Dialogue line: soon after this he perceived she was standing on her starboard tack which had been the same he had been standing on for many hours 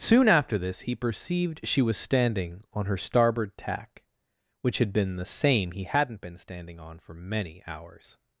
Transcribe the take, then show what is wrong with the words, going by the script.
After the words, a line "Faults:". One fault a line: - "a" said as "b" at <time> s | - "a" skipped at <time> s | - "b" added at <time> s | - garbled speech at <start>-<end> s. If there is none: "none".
soon after this he perceived she was standing on her starboard tack which had been the same he hadn't been standing on for many hours
Faults:
- "had" said as "hadn't" at 5.8 s